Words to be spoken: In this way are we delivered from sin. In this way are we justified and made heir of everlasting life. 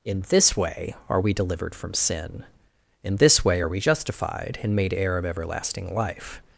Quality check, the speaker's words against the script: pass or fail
pass